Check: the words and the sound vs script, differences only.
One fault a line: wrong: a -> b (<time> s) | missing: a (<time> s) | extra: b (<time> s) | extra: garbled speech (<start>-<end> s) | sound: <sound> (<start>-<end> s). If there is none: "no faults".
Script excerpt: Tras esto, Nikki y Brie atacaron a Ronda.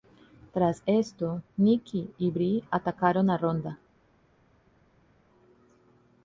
no faults